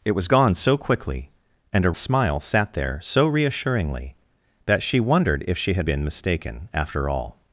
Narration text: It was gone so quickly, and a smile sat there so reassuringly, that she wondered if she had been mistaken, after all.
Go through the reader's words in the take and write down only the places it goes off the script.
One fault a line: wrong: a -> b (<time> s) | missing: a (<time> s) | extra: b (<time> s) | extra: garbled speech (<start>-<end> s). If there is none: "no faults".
no faults